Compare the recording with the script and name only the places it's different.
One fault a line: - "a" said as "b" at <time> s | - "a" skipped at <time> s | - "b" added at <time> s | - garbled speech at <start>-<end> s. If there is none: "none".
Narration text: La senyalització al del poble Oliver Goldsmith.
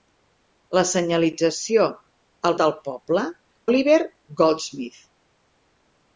none